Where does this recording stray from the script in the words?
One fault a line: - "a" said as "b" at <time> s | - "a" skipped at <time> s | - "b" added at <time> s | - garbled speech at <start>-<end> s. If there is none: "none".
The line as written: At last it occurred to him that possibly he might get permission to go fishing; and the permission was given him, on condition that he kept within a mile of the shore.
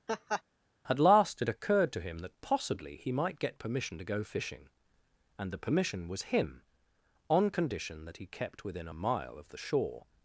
- "given" skipped at 6.3 s